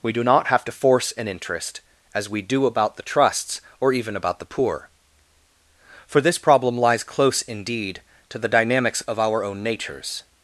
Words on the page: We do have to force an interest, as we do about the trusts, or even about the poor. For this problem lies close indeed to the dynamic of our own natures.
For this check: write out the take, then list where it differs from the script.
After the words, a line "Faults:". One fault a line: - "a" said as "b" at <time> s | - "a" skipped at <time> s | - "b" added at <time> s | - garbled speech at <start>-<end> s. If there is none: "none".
We do not have to force an interest, as we do about the trusts, or even about the poor. For this problem lies close indeed to the dynamics of our own natures.
Faults:
- "not" added at 0.2 s
- "dynamic" said as "dynamics" at 8.5 s